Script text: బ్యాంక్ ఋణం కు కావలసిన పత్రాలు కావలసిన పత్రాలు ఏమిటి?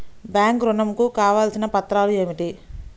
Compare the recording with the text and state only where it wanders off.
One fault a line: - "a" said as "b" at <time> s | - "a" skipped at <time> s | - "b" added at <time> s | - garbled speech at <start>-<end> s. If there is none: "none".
- "కావలసిన పత్రాలు" skipped at 2.1 s